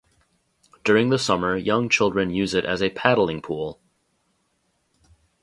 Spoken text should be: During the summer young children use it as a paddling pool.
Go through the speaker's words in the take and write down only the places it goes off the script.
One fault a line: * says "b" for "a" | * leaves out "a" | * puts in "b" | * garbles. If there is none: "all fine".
all fine